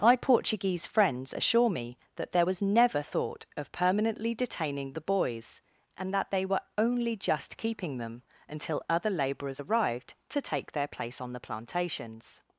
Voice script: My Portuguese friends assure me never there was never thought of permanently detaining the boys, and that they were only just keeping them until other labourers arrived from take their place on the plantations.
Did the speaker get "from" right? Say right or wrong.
wrong